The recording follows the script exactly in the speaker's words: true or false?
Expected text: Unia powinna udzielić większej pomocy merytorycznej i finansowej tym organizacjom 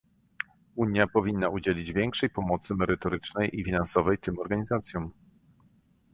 true